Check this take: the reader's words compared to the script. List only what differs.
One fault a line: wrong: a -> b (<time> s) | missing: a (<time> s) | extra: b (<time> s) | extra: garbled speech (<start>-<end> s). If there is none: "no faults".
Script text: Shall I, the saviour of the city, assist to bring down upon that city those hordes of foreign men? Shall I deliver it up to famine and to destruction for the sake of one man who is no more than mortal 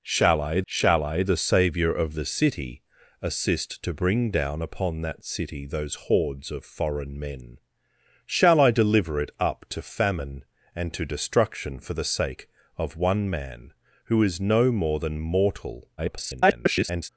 extra: shall I (0.7 s)
extra: garbled speech (16.0-17.1 s)